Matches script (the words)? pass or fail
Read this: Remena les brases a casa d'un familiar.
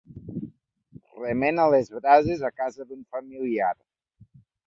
pass